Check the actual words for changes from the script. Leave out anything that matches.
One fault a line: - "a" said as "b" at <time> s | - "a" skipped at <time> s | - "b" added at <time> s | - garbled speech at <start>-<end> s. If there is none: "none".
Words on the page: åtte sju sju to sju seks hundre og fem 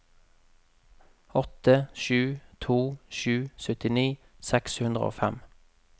- "sju" skipped at 2.4 s
- "syttini" added at 3.7 s